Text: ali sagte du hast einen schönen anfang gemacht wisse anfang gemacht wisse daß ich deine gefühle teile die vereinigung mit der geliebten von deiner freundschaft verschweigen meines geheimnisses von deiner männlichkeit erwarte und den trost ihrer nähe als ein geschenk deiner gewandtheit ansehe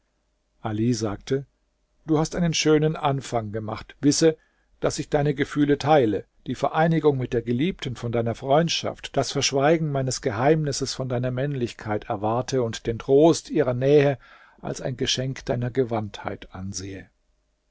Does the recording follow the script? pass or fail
fail